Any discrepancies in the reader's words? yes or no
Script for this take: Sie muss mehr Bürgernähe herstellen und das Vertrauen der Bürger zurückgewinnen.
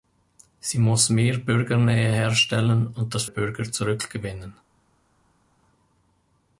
yes